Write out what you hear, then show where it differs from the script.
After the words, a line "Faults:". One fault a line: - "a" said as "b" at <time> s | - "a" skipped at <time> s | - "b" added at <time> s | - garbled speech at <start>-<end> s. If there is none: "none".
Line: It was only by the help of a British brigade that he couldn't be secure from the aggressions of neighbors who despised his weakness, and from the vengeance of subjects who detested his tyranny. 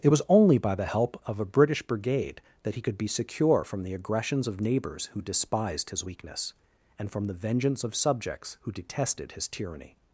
It was only by the help of a British brigade that he could be secure from the aggressions of neighbors who despised his weakness, and from the vengeance of subjects who detested his tyranny.
Faults:
- "couldn't" said as "could" at 2.8 s